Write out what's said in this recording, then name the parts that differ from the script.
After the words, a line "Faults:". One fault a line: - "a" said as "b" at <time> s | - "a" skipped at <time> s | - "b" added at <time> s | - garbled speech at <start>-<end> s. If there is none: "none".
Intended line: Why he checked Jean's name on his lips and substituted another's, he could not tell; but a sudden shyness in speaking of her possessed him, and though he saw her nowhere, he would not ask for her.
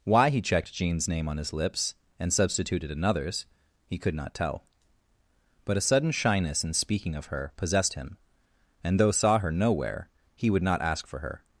Why he checked Jean's name on his lips and substituted another's, he could not tell; but a sudden shyness in speaking of her possessed him, and though saw her nowhere, he would not ask for her.
Faults:
- "he" skipped at 9.1 s